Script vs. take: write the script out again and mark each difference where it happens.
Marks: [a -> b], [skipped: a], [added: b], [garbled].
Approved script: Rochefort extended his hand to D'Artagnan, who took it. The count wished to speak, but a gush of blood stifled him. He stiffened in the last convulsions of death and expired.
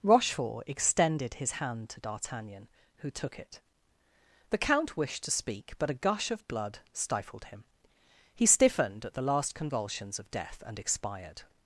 Rochefort extended his hand to D'Artagnan, who took it. The count wished to speak, but a gush of blood stifled him. He stiffened [in -> at] the last convulsions of death and expired.